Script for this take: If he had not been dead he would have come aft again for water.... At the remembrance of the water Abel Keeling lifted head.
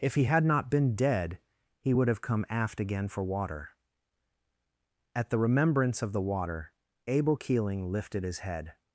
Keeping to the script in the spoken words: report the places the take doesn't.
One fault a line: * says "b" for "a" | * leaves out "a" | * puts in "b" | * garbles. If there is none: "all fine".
* puts in "his"